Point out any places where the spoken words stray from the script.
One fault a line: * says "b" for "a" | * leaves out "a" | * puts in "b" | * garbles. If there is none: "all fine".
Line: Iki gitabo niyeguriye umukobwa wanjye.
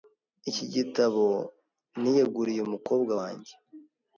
all fine